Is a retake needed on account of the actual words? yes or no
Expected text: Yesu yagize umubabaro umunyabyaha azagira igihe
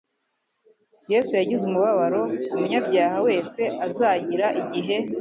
yes